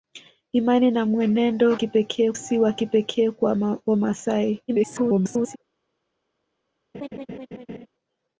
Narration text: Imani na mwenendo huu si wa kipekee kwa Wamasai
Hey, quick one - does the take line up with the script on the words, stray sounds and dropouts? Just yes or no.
no